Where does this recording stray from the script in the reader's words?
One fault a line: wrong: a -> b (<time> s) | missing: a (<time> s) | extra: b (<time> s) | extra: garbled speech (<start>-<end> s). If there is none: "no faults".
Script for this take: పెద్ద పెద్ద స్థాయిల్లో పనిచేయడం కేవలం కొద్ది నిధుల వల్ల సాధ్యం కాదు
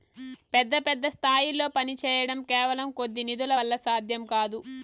no faults